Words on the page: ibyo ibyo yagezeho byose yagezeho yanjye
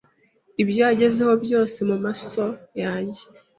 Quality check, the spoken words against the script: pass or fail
fail